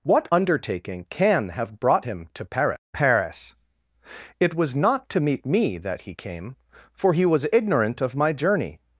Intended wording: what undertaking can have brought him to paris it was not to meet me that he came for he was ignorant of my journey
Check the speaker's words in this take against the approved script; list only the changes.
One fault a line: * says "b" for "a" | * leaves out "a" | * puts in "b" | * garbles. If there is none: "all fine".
* puts in "paris"